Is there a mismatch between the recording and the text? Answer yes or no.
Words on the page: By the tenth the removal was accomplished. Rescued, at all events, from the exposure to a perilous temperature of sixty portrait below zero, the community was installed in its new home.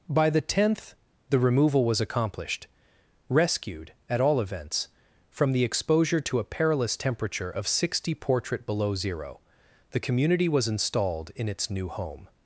no